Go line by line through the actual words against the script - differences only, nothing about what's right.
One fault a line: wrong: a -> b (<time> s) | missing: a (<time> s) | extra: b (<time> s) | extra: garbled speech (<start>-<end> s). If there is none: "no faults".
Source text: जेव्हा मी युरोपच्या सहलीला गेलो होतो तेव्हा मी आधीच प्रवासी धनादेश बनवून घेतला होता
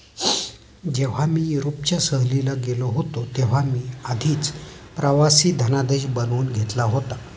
no faults